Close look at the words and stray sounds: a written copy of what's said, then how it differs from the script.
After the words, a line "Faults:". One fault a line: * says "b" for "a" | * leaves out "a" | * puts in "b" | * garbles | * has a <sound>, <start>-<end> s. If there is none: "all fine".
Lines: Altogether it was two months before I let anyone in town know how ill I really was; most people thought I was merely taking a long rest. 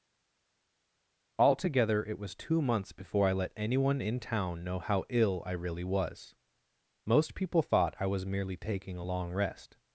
Altogether it was two months before I let anyone in town know how ill I really was; most people thought I was merely taking a long rest.
Faults:
all fine